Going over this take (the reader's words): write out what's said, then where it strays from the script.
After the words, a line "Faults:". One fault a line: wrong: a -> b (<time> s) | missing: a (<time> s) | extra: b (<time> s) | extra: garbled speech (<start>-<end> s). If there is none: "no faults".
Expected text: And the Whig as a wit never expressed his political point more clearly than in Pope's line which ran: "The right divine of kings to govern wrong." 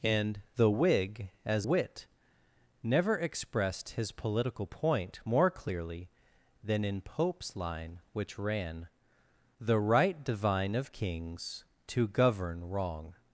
And the Whig as wit never expressed his political point more clearly than in Pope's line which ran: "The right divine of kings to govern wrong."
Faults:
missing: a (1.7 s)